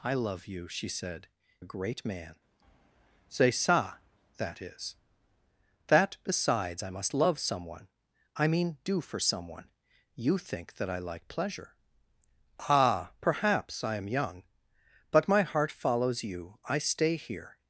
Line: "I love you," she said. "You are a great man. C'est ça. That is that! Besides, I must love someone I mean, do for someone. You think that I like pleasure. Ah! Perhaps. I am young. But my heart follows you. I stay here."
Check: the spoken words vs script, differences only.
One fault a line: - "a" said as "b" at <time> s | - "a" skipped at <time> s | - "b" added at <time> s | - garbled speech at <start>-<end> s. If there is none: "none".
- "You are" skipped at 1.3 s